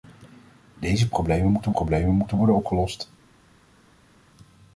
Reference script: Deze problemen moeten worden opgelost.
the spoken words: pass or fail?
fail